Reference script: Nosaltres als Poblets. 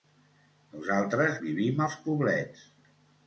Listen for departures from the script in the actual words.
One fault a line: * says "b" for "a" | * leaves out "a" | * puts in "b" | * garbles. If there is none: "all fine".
* puts in "vivim"